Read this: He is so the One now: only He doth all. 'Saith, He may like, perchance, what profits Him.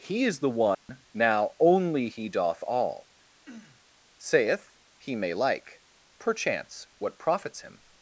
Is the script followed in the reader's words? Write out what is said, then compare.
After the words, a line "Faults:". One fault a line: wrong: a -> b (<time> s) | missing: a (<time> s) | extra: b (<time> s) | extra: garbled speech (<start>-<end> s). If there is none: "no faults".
He is the One now: only He doth all. 'Saith, He may like, perchance, what profits Him.
Faults:
missing: so (0.4 s)